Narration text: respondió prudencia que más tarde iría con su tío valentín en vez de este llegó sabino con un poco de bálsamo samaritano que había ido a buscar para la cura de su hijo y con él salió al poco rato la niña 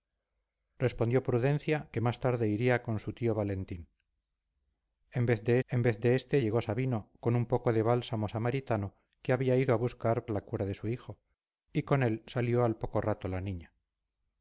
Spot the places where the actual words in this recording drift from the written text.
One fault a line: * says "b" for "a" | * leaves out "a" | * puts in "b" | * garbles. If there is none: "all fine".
* puts in "en vez de"
* leaves out "para"